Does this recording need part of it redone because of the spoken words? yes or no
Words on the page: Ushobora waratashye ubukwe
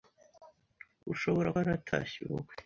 no